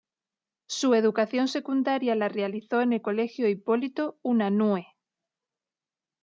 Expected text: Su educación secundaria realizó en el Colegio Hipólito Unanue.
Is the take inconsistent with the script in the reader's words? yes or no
yes